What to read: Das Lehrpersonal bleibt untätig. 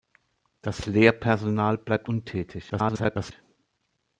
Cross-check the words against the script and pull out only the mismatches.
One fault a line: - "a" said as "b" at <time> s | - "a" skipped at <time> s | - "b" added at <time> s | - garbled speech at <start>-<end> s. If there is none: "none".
- garbled speech at 2.7-3.3 s